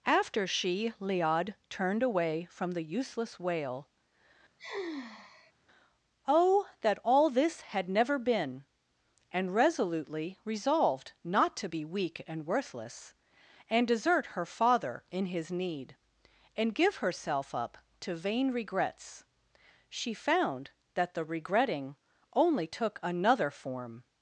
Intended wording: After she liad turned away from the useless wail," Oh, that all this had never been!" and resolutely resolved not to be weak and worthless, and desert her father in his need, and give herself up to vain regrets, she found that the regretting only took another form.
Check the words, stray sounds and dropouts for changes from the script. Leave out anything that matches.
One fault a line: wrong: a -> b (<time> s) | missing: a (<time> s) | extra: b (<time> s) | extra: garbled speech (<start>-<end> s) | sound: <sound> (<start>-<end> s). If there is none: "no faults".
sound: sigh (4.6-5.5 s)